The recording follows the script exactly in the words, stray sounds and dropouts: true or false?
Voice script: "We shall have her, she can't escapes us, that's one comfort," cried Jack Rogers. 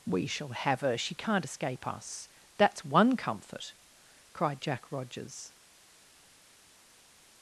false